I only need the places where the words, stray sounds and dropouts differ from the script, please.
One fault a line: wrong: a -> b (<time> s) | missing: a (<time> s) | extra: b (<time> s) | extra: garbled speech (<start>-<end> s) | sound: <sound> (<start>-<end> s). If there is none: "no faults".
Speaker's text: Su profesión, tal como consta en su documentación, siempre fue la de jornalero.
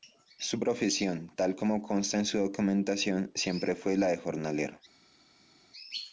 no faults